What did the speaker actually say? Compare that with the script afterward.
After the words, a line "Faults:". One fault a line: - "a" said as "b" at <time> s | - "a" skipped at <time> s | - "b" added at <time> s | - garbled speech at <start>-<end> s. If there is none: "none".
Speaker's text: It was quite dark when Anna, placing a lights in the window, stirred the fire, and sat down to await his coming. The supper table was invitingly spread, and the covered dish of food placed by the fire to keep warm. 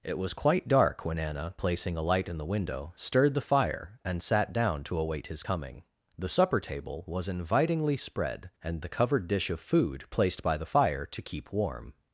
It was quite dark when Anna, placing a light in the window, stirred the fire, and sat down to await his coming. The supper table was invitingly spread, and the covered dish of food placed by the fire to keep warm.
Faults:
- "lights" said as "light" at 2.0 s